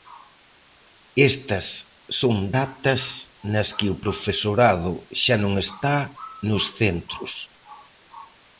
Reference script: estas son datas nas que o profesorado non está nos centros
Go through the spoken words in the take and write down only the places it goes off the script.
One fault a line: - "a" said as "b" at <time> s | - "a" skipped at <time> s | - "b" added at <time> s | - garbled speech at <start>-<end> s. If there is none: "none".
- "xa" added at 5.2 s